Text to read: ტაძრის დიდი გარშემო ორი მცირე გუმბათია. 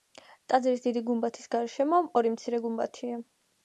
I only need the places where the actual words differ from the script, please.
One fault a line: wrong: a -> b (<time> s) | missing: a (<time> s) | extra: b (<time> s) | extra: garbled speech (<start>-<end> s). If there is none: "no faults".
extra: გუმბათის (1.1 s)